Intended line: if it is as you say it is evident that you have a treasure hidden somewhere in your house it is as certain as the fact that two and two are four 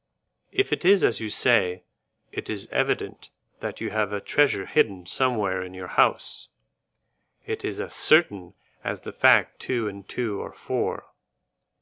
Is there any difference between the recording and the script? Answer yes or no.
yes